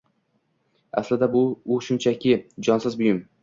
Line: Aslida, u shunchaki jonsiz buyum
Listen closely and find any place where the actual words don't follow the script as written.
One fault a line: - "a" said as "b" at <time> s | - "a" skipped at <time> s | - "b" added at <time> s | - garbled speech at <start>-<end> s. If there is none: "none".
none